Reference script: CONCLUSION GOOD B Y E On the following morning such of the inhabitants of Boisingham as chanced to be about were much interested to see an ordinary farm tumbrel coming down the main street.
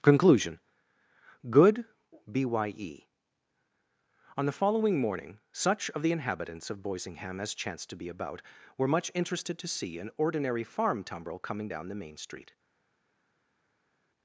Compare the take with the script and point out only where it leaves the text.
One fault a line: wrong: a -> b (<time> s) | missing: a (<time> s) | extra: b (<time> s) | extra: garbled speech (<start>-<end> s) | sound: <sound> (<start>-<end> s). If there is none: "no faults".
no faults